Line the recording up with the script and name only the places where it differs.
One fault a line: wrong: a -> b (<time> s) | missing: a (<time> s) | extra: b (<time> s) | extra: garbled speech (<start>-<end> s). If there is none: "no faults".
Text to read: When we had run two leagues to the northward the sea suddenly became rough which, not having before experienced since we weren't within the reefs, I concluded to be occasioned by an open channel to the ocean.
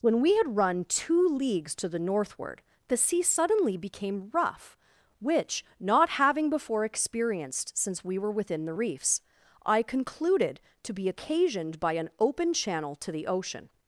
wrong: weren't -> were (8.2 s)